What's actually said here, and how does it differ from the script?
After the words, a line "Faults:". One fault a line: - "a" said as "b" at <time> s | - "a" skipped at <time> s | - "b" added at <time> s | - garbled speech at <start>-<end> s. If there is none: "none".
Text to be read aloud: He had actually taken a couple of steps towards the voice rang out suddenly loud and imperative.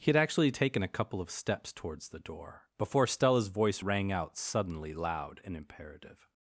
He had actually taken a couple of steps towards the door before Stella's voice rang out suddenly loud and imperative.
Faults:
- "door before Stella's" added at 2.2 s